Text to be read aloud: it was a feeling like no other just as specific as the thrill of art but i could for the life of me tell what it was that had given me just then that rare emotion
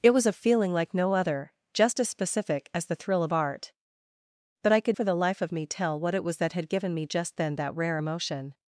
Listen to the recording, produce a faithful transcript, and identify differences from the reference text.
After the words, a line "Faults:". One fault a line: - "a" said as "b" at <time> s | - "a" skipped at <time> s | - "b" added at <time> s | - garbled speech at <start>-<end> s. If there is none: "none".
it was a feeling like no other just as specific as the thrill of art but i could for the life of me tell what it was that had given me just then that rare emotion
Faults:
none